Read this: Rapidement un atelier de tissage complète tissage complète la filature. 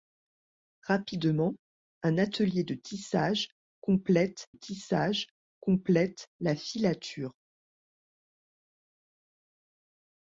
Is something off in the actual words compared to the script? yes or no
no